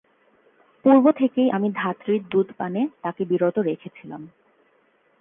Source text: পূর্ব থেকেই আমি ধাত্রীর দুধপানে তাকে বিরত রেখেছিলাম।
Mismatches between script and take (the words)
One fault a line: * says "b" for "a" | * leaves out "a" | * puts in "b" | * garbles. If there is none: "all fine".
all fine